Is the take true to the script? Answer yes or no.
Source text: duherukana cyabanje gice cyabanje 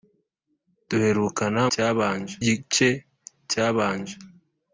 yes